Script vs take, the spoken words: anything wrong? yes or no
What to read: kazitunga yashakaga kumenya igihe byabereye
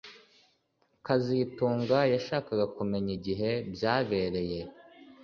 no